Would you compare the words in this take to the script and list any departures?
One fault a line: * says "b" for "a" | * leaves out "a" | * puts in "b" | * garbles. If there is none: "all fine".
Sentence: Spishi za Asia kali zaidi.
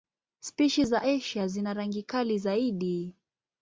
* puts in "zina rangi"